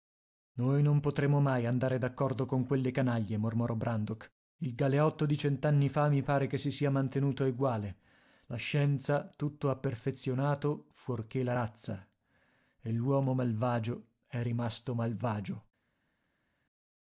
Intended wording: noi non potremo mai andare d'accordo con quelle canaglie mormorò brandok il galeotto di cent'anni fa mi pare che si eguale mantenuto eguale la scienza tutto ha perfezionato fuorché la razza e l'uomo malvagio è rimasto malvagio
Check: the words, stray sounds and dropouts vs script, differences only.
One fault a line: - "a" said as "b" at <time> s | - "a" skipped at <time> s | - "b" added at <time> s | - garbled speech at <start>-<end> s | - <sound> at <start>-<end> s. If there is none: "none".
- "eguale" said as "sia" at 6.7 s